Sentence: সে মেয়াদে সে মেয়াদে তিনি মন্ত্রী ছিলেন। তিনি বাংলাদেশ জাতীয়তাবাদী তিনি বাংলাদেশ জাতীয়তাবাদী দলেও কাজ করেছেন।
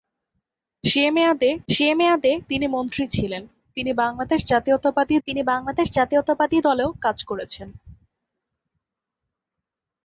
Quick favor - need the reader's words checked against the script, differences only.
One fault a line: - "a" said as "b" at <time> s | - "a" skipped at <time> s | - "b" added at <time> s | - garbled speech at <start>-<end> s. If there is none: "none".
none